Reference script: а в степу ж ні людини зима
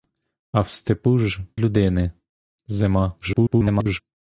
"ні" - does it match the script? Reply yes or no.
no